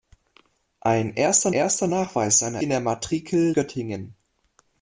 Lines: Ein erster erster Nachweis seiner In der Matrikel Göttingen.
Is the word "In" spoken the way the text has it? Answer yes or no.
yes